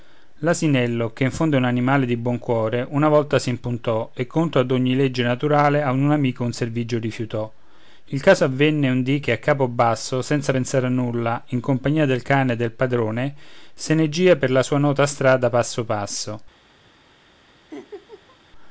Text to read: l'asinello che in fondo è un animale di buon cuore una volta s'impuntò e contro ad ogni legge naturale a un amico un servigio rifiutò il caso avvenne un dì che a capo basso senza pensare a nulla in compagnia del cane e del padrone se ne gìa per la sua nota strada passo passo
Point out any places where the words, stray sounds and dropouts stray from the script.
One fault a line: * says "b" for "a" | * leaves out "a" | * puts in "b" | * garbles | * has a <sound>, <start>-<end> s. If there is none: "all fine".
* has a laugh, 17.7-18.4 s